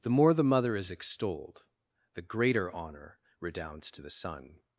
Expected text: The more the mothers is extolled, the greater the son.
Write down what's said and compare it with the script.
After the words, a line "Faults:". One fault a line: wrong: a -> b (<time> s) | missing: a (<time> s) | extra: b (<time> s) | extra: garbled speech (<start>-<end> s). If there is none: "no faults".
The more the mother is extolled, the greater honor redounds to the son.
Faults:
wrong: mothers -> mother (0.4 s)
extra: honor redounds to (2.7 s)